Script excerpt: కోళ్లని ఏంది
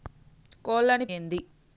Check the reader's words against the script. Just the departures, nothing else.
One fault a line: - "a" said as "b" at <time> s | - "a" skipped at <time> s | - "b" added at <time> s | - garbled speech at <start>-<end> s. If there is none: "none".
none